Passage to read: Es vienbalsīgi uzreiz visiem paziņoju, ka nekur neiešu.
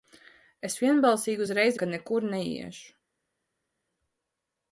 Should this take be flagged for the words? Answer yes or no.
yes